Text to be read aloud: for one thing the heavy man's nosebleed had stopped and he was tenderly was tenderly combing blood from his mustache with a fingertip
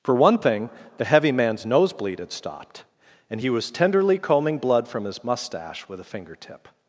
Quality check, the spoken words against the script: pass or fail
fail